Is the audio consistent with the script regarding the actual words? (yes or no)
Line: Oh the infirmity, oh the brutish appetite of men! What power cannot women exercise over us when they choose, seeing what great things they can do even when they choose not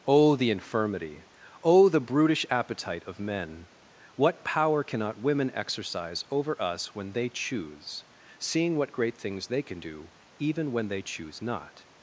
yes